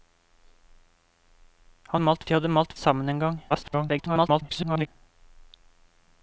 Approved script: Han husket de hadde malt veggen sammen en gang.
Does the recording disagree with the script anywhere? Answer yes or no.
yes